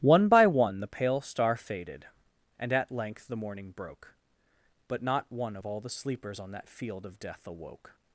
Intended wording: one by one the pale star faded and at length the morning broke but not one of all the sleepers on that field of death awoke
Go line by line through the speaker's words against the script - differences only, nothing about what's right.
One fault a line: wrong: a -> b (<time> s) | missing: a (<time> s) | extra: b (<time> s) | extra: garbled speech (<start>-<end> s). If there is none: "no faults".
no faults